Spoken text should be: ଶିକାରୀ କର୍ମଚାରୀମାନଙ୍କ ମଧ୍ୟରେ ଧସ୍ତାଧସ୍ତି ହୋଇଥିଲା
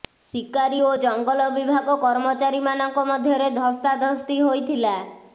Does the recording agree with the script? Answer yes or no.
no